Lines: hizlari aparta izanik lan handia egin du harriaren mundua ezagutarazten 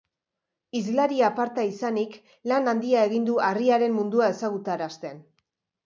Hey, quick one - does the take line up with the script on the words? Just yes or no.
yes